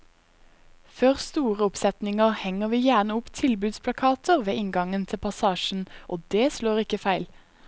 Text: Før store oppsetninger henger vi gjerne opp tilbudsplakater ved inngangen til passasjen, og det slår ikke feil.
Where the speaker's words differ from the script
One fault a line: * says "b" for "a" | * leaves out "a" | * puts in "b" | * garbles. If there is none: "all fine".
all fine